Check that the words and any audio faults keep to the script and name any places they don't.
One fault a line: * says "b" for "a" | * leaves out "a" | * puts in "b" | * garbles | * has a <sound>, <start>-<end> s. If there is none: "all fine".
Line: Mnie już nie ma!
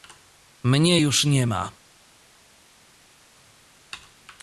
all fine